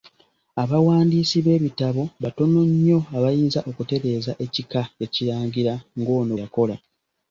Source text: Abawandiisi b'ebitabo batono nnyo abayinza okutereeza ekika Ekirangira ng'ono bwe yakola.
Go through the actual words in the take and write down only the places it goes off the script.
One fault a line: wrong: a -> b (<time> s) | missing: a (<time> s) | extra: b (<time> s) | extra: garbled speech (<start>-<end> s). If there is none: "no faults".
missing: bwe (6.3 s)